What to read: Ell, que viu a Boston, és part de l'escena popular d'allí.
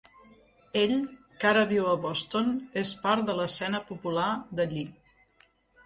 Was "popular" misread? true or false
false